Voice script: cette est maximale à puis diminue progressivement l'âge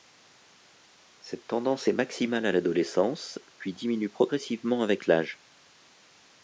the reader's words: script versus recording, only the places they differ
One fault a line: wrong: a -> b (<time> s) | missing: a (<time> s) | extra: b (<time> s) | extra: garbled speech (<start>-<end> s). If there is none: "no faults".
extra: tendance (1.4 s)
extra: l'adolescence (2.5 s)
extra: avec (4.8 s)